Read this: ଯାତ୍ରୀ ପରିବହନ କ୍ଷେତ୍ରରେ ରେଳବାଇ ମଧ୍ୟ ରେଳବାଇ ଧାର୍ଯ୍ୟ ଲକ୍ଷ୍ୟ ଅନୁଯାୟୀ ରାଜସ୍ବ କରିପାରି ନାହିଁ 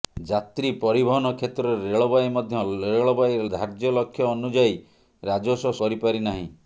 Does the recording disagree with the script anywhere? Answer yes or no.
no